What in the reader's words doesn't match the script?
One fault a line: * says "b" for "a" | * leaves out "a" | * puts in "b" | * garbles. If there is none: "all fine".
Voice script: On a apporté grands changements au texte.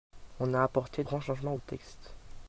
all fine